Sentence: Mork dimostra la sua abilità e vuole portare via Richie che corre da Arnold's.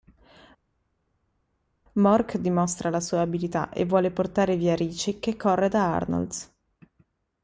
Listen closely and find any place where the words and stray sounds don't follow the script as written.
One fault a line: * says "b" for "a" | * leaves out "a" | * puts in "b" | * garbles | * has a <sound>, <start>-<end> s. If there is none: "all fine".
all fine